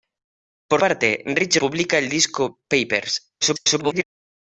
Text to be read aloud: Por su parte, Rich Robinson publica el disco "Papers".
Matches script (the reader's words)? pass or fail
fail